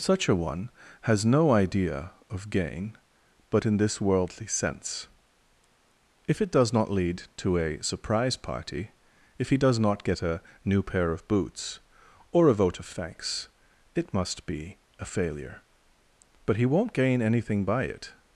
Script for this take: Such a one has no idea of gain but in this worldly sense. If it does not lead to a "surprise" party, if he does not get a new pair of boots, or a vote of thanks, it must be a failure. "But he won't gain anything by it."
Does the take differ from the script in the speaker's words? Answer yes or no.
no